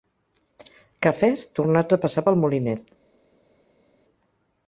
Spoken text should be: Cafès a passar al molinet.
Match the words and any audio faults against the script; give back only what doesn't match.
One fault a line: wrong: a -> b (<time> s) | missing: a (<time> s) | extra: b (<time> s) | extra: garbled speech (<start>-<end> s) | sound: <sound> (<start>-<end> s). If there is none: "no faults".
extra: tornats (1.6 s)
wrong: al -> pel (2.3 s)